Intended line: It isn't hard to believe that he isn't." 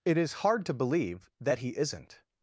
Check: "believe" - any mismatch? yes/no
no